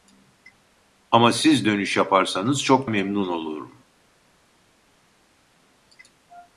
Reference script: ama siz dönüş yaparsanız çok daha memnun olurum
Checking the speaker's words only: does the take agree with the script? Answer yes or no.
no